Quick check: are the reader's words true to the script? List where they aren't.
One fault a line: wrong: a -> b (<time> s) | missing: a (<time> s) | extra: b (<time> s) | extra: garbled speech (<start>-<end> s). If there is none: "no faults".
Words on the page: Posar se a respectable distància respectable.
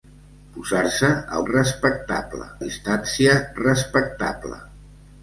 no faults